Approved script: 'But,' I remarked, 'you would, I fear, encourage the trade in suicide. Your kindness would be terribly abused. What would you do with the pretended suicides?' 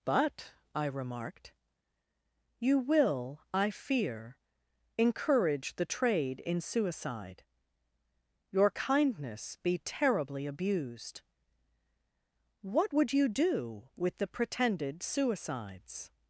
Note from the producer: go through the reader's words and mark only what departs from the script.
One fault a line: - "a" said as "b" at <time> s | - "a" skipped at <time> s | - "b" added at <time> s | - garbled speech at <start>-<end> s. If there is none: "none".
- "would" said as "will" at 2.8 s
- "would" skipped at 9.6 s